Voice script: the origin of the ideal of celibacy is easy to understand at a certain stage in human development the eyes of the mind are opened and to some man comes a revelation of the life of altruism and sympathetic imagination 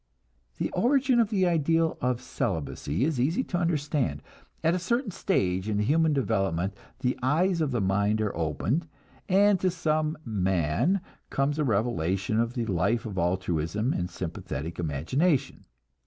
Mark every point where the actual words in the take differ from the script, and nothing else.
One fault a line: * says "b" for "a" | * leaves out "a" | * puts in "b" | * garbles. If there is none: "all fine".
all fine